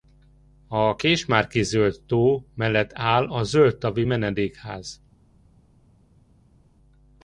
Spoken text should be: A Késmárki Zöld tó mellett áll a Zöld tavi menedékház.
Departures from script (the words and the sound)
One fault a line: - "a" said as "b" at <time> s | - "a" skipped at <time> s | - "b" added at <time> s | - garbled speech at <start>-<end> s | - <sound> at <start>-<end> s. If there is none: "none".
none